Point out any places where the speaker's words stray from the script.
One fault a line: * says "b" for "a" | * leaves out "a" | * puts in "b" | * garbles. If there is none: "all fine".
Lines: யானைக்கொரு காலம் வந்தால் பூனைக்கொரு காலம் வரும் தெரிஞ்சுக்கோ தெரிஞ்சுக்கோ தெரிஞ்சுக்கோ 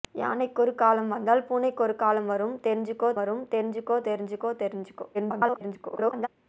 * puts in "வரும் தெரிஞ்சுக்கோ"
* garbles